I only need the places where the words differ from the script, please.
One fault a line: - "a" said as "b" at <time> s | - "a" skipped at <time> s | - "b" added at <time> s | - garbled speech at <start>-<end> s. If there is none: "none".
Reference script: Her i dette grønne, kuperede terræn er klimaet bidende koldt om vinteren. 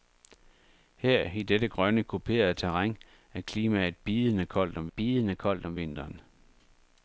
- "bidende koldt om" added at 4.9 s